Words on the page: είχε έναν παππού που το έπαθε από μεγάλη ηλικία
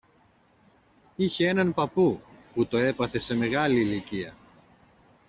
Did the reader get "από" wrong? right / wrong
wrong